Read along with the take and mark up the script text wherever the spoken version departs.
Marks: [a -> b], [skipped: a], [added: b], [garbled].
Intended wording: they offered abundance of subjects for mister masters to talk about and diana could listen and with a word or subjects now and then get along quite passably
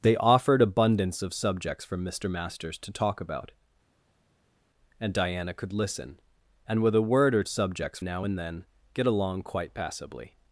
they offered abundance of subjects for mister masters to talk about and diana could listen and with a word or subjects now and then get along quite passably